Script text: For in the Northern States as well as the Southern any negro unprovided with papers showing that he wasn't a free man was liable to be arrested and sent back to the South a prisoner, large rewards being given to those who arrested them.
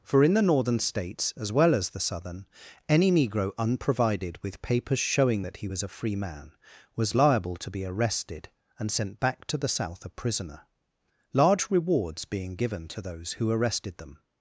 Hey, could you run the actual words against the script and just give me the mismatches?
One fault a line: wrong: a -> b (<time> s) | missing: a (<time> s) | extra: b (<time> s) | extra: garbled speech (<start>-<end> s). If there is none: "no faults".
wrong: wasn't -> was (5.7 s)